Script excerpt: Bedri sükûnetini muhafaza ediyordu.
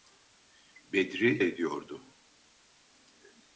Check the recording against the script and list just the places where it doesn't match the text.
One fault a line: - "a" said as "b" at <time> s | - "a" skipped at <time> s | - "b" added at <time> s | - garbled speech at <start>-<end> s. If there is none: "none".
- "sükûnetini muhafaza" skipped at 1.4 s